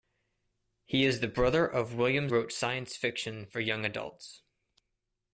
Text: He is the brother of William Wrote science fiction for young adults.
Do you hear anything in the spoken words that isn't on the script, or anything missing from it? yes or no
no